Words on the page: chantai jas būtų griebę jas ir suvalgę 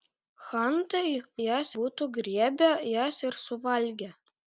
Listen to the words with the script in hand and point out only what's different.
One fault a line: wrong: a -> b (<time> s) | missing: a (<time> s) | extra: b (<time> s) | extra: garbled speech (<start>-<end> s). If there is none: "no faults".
no faults